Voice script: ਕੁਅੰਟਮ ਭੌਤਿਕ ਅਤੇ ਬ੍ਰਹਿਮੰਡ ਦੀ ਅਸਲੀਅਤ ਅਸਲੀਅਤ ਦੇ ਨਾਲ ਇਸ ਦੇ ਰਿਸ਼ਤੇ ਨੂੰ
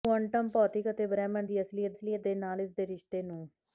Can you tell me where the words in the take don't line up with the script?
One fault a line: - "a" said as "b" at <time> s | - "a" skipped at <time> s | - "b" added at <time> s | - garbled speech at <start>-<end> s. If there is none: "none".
none